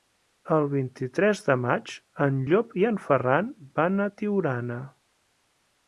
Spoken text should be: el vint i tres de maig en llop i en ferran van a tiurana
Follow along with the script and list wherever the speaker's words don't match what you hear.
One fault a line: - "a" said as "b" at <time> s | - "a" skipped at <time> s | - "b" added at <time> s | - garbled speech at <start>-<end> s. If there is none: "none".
none